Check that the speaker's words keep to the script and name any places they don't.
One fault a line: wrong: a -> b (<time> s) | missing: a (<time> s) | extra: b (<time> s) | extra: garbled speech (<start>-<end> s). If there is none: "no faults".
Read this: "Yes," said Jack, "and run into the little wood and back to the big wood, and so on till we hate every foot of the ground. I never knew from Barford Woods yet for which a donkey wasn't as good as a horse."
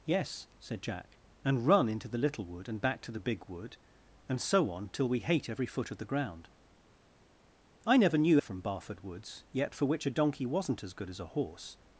no faults